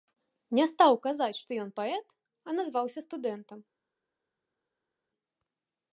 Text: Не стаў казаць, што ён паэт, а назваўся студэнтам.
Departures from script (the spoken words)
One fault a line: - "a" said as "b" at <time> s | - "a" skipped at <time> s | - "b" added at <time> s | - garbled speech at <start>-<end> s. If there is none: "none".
none